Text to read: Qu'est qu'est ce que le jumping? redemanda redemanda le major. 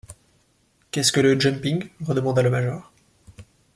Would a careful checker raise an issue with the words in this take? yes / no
yes